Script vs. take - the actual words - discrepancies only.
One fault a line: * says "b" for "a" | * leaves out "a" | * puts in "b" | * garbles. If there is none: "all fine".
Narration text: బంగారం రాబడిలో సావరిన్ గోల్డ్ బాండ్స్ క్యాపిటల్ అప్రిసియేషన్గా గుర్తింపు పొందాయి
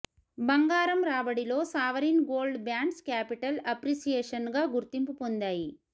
all fine